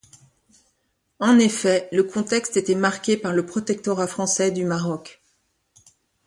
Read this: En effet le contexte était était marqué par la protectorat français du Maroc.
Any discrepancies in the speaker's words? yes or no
yes